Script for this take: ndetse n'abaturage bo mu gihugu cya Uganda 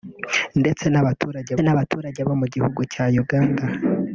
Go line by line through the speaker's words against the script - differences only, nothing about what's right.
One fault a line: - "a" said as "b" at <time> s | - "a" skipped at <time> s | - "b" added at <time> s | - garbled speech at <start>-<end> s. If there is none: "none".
- "n'abaturage" added at 1.6 s